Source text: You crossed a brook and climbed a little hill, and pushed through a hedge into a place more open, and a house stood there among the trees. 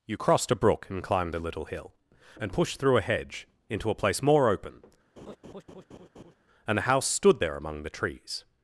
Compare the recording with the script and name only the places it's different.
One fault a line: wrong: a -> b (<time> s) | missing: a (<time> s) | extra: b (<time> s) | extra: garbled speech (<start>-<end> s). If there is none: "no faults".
no faults